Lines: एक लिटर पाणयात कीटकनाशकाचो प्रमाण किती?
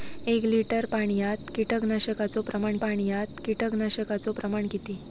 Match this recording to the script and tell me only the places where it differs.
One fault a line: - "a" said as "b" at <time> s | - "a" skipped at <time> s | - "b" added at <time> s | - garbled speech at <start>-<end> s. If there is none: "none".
- "पाणयात कीटकनाशकाचो प्रमाण" added at 2.8 s